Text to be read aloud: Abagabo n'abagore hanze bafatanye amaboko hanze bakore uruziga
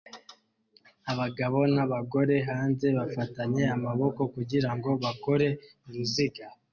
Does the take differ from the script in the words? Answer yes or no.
yes